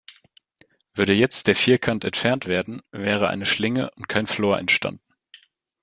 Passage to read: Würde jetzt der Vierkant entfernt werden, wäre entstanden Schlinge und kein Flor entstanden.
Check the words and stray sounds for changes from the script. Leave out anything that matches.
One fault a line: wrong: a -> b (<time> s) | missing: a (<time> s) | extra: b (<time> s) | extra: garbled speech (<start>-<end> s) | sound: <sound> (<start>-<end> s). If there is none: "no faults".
wrong: entstanden -> eine (3.3 s)